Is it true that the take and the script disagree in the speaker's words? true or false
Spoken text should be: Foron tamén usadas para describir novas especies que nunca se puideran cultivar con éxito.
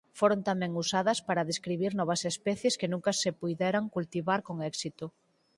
false